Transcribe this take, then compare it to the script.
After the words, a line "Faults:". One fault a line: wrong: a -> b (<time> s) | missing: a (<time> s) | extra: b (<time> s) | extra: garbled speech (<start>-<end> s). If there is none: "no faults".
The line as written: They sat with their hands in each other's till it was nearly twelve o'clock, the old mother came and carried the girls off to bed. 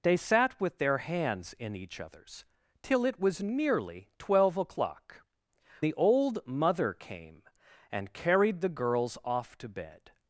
They sat with their hands in each other's till it was nearly twelve o'clock, the old mother came and carried the girls off to bed.
Faults:
no faults